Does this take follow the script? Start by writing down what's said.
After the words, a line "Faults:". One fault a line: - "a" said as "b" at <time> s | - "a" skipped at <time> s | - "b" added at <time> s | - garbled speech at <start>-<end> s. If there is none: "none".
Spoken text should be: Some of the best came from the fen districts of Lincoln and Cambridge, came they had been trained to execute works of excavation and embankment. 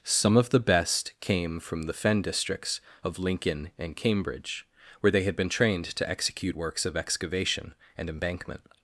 Some of the best came from the fen districts of Lincoln and Cambridge, where they had been trained to execute works of excavation and embankment.
Faults:
- "came" said as "where" at 5.0 s